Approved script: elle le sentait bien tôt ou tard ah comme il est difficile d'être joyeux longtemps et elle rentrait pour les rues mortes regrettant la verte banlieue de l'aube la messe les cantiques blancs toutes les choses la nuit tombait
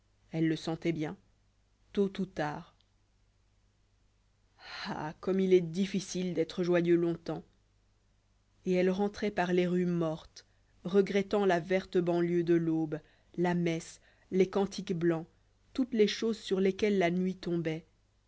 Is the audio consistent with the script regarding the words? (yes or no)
no